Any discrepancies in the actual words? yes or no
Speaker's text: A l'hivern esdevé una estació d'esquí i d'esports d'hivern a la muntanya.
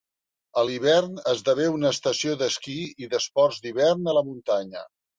no